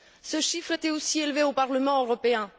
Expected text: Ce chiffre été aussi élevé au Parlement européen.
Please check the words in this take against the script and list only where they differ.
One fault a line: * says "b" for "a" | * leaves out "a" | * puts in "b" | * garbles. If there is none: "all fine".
all fine